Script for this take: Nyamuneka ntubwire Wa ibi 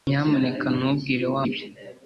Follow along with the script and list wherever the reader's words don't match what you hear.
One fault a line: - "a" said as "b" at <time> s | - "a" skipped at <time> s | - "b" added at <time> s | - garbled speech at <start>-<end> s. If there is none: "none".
none